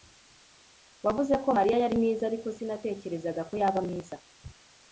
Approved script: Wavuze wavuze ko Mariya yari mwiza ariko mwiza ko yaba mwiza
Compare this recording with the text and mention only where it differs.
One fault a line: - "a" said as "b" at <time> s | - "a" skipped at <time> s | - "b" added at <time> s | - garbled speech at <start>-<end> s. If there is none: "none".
- "wavuze" skipped at 1.3 s
- "mwiza" said as "sinatekerezaga" at 2.6 s